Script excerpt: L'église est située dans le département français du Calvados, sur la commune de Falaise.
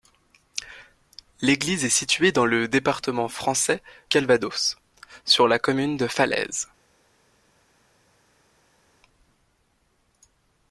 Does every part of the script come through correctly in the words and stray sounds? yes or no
no